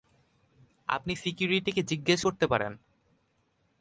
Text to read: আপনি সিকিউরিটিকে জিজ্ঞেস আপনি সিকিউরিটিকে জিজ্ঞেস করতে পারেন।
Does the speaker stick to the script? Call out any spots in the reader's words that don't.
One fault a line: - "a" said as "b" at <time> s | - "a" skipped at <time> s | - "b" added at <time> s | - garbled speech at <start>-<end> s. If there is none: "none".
- "আপনি সিকিউরিটিকে জিজ্ঞেস" skipped at 2.2 s